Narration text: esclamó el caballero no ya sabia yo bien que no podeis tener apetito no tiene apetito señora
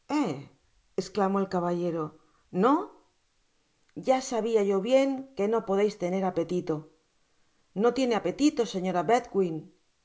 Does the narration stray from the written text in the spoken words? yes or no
no